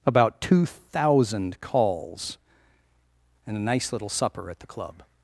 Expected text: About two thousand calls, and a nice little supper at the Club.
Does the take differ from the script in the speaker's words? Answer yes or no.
no